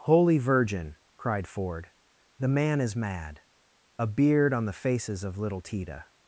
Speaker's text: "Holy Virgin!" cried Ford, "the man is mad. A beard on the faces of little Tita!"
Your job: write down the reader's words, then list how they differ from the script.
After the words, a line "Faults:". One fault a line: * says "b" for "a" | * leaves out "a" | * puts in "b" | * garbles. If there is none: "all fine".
"Holy Virgin!" cried Ford, "the man is mad. A beard on the faces of little Tita!"
Faults:
all fine